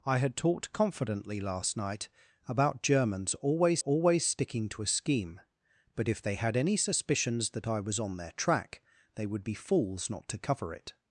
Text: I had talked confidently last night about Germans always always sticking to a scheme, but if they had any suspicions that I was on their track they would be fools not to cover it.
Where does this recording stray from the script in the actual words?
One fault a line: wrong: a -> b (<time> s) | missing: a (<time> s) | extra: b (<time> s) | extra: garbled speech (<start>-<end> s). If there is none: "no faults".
no faults